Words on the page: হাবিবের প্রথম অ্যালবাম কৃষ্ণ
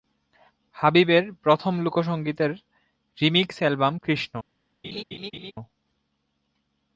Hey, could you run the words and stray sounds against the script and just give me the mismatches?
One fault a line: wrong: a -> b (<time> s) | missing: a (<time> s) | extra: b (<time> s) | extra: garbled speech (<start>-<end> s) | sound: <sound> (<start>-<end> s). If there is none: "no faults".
extra: লোকসঙ্গীতের রিমিক্স (1.8 s)
sound: laugh (4.8-5.5 s)